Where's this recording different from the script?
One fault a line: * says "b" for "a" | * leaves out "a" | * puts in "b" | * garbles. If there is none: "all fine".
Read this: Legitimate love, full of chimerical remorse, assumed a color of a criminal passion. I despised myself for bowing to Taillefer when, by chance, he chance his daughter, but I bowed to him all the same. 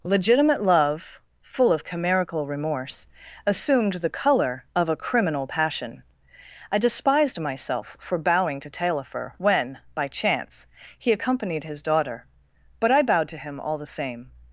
* says "the" for "a"
* says "accompanied" for "chance"